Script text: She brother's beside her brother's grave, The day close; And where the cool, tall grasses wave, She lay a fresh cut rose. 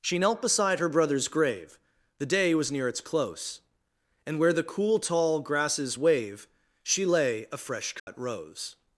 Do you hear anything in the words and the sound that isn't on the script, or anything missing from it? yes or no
yes